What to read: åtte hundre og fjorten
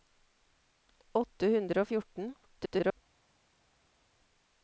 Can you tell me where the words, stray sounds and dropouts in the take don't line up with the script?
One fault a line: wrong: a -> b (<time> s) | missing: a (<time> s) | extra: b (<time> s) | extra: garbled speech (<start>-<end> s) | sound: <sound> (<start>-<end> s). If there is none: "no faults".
extra: garbled speech (2.4-3.0 s)